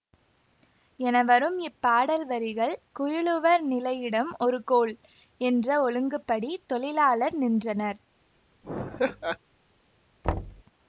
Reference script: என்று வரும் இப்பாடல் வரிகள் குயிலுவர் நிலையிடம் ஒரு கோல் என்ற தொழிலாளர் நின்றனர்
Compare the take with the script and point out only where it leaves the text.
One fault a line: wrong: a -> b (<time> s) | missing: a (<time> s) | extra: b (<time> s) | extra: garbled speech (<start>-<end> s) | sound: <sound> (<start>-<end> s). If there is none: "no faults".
wrong: என்று -> என (1.0 s)
extra: ஒழுங்குப்படி (5.8 s)
sound: laugh (8.6-9.4 s)
sound: thud (10.2-10.6 s)